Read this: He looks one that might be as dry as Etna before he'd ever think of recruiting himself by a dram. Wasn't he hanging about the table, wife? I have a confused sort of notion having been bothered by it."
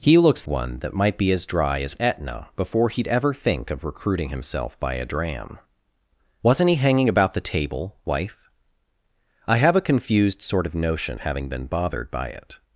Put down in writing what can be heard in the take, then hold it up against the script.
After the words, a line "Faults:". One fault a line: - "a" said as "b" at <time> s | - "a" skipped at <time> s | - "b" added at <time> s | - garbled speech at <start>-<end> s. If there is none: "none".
He looks one that might be as dry as Etna before he'd ever think of recruiting himself by a dram. Wasn't he hanging about the table, wife? I have a confused sort of notion having been bothered by it."
Faults:
none